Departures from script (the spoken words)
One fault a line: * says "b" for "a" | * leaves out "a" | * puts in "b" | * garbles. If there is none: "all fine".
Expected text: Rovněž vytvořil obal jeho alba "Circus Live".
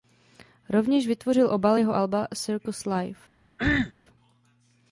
all fine